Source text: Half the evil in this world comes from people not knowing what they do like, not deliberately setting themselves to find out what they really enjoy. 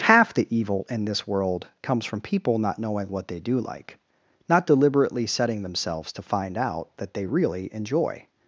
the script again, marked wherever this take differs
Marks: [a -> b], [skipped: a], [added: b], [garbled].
Half the evil in this world comes from people not knowing what they do like, not deliberately setting themselves to find out [what -> that] they really enjoy.